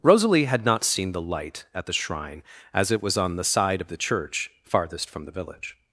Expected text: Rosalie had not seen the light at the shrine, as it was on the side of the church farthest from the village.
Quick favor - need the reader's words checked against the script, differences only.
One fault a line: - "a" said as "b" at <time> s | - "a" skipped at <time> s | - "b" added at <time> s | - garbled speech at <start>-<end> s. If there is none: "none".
none